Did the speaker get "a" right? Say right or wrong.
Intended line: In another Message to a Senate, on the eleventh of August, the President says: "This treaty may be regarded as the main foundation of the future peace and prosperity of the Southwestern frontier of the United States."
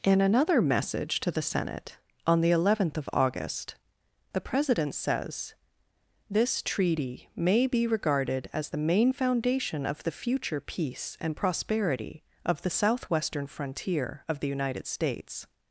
wrong